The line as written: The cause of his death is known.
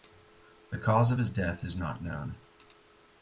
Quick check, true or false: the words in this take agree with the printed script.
false